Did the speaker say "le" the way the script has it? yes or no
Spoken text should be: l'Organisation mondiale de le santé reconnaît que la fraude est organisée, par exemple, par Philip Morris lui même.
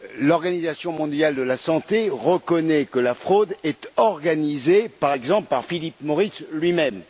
no